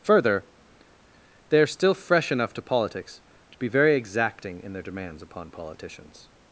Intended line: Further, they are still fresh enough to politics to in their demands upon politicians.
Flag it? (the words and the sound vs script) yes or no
yes